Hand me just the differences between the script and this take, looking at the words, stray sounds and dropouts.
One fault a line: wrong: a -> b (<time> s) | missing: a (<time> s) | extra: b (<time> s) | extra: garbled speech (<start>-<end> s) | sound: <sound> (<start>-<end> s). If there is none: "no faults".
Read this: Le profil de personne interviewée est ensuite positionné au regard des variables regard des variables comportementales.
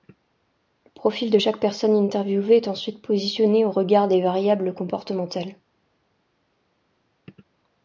extra: chaque (1.4 s)
missing: regard des variables (4.7 s)